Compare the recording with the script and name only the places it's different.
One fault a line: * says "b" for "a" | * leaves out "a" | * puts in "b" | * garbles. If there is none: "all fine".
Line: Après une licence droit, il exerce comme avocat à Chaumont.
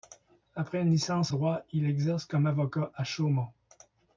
all fine